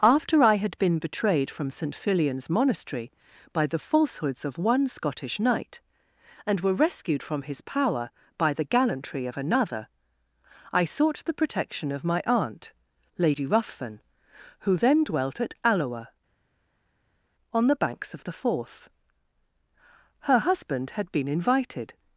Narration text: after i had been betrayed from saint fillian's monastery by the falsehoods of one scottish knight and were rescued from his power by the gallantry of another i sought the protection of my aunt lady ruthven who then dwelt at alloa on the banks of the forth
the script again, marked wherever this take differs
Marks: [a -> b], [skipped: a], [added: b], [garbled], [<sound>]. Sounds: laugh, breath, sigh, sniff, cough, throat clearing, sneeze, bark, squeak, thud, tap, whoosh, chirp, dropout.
after i had been betrayed from saint fillian's monastery by the falsehoods of one scottish knight and were rescued from his power by the gallantry of another i sought the protection of my aunt lady ruthven who then dwelt at alloa on the banks of the forth [added: her husband had been invited]